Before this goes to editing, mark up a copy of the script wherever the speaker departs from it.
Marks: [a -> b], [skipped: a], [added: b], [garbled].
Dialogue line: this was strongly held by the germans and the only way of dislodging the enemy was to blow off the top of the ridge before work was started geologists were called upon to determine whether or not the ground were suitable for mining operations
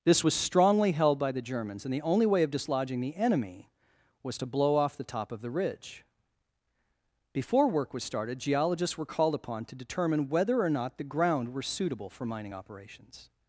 this was strongly held by the germans and the only way of dislodging the enemy was to blow off the top of the ridge before work was started geologists were called upon to determine whether or not the ground were suitable for mining operations